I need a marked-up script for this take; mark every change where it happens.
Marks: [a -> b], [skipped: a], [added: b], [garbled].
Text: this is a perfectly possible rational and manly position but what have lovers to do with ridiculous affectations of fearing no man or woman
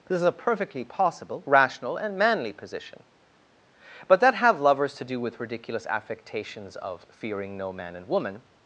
this is a perfectly possible rational and manly position but [what -> that] have lovers to do with ridiculous affectations of fearing no man [or -> and] woman